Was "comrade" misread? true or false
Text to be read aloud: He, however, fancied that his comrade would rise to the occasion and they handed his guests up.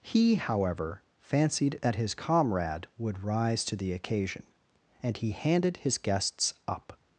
false